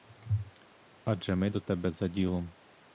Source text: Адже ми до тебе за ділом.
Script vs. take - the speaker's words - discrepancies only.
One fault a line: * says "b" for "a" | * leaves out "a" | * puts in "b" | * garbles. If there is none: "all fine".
all fine